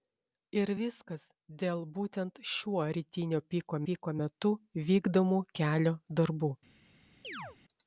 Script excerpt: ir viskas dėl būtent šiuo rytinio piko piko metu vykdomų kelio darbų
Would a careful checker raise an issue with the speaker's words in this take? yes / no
no